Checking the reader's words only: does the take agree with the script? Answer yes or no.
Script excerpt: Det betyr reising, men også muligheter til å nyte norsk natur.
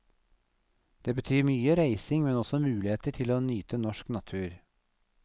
no